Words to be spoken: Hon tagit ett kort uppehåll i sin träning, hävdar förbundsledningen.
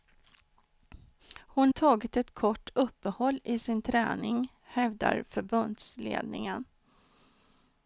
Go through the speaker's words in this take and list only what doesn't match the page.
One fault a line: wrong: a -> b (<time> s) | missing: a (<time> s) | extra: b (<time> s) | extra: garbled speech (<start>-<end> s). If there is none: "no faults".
no faults